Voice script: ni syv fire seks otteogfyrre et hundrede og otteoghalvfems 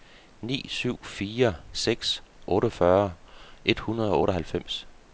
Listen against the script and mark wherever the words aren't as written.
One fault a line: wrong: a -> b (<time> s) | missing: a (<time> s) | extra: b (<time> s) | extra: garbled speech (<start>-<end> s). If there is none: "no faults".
no faults